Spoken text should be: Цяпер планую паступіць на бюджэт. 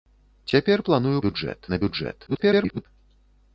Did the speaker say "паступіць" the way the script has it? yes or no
no